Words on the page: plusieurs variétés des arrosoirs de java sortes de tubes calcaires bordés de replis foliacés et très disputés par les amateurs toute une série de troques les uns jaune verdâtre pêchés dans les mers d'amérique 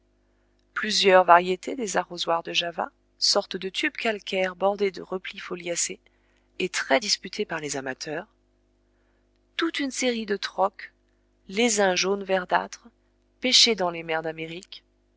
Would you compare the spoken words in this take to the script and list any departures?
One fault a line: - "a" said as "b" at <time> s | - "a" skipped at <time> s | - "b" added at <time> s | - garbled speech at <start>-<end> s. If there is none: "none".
none